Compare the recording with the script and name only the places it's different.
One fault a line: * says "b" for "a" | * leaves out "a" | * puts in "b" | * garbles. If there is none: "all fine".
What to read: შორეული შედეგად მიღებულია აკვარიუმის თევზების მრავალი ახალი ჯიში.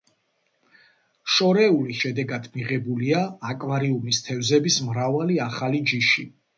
all fine